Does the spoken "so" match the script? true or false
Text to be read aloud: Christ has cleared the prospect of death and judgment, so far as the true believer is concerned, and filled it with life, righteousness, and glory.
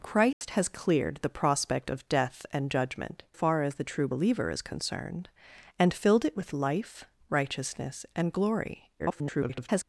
false